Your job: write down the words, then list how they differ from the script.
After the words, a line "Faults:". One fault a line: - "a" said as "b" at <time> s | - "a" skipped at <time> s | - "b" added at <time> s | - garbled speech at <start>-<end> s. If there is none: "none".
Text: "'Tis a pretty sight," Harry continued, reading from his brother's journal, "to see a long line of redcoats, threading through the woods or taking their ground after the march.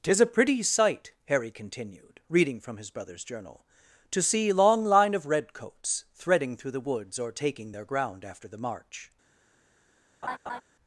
"'Tis a pretty sight," Harry continued, reading from his brother's journal, "to see long line of redcoats, threading through the woods or taking their ground after the march.
Faults:
- "a" skipped at 4.5 s